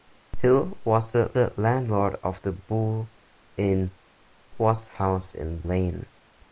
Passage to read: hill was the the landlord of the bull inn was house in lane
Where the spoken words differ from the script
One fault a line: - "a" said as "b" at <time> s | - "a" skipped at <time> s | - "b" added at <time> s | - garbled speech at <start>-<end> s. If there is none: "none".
none